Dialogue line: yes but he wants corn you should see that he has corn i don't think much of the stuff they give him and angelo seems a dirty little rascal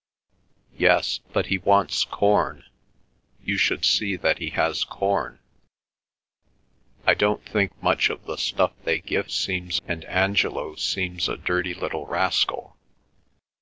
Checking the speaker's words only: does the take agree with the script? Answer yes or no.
no